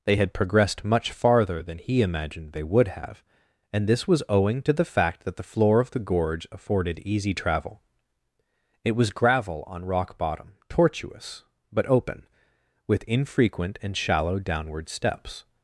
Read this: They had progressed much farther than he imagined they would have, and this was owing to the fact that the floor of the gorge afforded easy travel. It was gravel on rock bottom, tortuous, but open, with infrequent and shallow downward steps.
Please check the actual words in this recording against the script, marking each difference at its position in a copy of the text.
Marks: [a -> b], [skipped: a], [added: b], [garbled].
They had progressed much farther than he imagined they would have, and this was owing to the fact that the floor of the gorge afforded easy travel. It was gravel on rock bottom, tortuous, but open, with infrequent and shallow downward steps.